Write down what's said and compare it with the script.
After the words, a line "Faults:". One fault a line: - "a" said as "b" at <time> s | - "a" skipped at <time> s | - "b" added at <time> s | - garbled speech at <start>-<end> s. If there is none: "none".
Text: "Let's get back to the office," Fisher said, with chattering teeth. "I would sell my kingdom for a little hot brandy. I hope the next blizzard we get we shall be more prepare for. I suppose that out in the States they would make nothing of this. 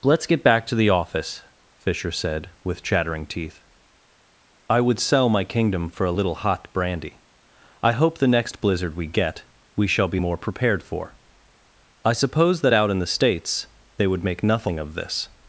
"Let's get back to the office," Fisher said, with chattering teeth. "I would sell my kingdom for a little hot brandy. I hope the next blizzard we get we shall be more prepared for. I suppose that out in the States they would make nothing of this.
Faults:
- "prepare" said as "prepared" at 10.4 s